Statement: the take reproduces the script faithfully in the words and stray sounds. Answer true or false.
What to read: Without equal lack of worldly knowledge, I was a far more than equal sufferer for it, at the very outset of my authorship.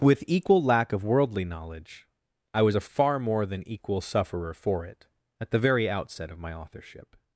false